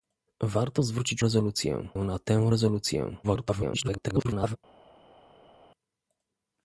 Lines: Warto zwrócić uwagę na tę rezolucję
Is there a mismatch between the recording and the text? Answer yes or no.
yes